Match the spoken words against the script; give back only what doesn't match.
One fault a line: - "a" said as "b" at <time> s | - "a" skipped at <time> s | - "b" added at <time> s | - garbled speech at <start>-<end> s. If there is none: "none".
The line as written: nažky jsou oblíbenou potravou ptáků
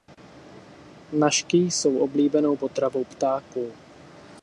none